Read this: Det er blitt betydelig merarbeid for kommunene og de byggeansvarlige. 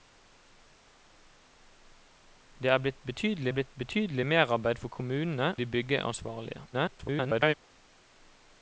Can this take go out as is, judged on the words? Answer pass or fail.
fail